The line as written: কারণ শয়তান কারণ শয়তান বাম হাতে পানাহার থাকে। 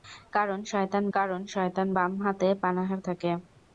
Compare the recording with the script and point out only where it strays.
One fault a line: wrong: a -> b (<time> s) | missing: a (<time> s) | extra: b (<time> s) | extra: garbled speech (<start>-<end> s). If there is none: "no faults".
no faults